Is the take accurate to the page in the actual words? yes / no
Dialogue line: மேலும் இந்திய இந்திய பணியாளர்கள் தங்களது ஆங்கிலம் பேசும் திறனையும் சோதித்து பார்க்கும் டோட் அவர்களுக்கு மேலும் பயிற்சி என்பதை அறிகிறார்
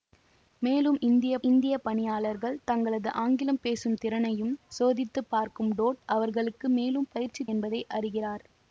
yes